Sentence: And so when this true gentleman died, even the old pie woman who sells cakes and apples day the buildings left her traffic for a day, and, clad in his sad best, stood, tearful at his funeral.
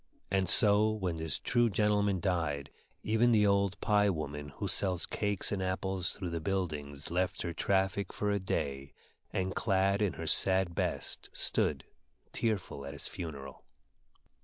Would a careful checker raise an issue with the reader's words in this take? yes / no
yes